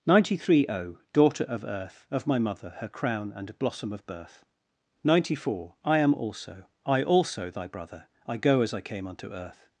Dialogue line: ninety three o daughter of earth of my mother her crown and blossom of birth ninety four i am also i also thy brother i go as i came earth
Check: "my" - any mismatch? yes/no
no